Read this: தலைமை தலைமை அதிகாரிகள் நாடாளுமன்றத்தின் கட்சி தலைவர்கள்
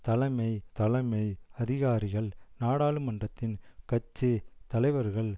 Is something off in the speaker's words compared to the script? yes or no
no